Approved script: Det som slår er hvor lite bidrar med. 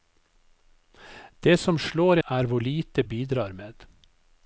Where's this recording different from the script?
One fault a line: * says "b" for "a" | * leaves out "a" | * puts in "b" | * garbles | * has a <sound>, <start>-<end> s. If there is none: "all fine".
all fine